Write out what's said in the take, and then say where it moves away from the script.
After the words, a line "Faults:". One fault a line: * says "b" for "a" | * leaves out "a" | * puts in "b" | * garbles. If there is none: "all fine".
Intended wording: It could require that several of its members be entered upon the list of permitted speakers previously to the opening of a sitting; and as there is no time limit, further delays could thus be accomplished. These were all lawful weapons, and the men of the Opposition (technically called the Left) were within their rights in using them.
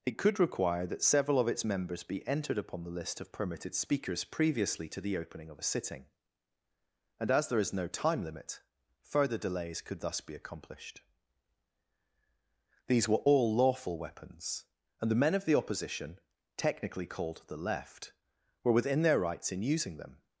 It could require that several of its members be entered upon the list of permitted speakers previously to the opening of a sitting; and as there is no time limit, further delays could thus be accomplished. These were all lawful weapons, and the men of the Opposition (technically called the Left) were within their rights in using them.
Faults:
all fine